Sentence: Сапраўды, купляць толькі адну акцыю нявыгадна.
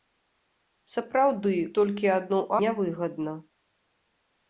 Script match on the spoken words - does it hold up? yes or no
no